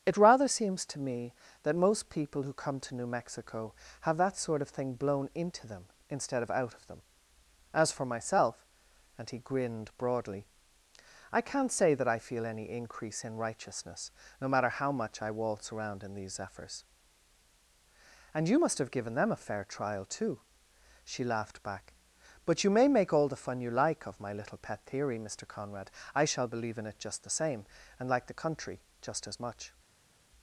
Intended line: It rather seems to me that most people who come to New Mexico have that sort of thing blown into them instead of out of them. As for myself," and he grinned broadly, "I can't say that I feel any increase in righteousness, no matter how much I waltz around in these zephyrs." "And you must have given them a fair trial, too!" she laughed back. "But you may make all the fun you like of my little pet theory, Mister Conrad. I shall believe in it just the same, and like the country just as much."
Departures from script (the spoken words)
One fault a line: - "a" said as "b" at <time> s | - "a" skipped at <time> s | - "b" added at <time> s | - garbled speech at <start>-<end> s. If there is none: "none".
none